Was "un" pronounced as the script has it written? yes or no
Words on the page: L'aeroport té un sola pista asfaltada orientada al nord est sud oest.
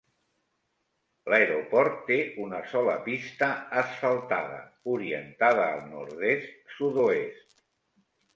no